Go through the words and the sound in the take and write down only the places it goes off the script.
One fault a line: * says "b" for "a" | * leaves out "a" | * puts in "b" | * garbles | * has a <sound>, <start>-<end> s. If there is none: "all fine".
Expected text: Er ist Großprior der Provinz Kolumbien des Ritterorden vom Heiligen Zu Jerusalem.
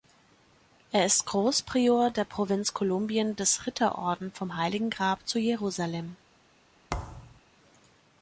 * puts in "Grab"
* has a thud, 6.9-7.4 s